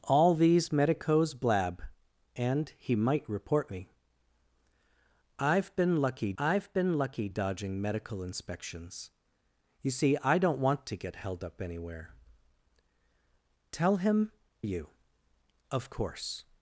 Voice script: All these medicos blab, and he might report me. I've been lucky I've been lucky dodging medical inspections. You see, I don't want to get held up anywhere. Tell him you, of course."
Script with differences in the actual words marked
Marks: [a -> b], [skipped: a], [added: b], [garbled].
All these medicos blab, and he might report me. I've been lucky I've been lucky dodging medical inspections. You see, I don't want to get held up anywhere. Tell him you, of course."